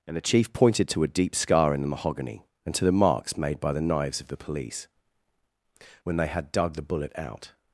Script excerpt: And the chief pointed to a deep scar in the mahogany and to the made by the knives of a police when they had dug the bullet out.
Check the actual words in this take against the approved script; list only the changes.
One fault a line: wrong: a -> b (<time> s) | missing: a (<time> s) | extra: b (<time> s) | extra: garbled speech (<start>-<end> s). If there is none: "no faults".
extra: marks (2.9 s)
wrong: a -> the (4.3 s)